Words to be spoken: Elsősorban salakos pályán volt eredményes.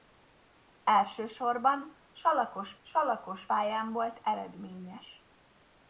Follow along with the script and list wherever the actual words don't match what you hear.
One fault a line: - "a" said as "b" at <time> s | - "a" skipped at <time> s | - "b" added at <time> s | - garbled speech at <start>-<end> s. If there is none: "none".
- "salakos" added at 2.8 s